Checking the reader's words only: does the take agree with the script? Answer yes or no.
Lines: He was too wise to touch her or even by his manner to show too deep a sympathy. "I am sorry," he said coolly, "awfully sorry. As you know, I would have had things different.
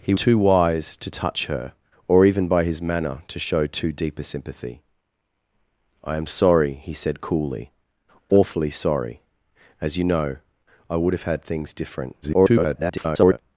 no